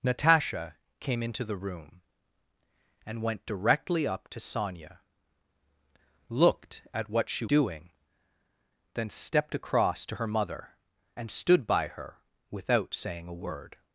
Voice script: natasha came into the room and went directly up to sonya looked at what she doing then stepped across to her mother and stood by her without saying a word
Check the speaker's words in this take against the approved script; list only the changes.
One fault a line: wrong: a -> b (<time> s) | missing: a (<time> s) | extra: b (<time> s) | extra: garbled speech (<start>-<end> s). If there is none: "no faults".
no faults